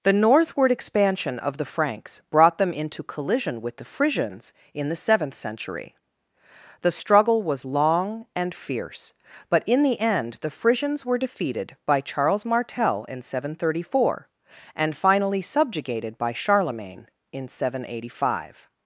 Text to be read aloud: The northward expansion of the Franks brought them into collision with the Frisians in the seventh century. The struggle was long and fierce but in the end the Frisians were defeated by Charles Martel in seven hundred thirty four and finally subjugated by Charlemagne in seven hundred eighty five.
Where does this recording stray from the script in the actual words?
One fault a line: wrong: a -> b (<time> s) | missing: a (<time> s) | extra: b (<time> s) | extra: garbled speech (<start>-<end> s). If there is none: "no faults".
no faults